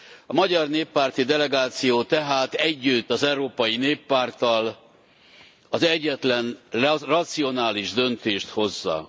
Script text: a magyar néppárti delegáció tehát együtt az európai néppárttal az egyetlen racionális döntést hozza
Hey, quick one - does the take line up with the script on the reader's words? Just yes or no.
yes